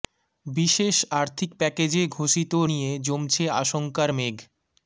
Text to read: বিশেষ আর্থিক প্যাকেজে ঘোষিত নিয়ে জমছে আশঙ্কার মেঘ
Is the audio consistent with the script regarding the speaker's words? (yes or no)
yes